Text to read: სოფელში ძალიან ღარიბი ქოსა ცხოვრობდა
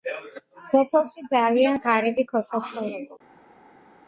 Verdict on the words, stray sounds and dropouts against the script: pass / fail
pass